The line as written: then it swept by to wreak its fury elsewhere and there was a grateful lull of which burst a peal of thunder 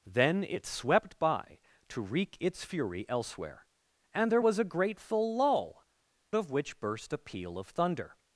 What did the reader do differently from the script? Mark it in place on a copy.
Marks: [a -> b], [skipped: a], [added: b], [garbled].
then it swept by to wreak its fury elsewhere and there was a grateful lull of which burst a peal of thunder